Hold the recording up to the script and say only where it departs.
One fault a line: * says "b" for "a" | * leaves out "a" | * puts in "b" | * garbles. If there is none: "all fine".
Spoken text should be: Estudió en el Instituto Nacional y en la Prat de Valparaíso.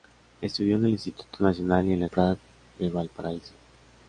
all fine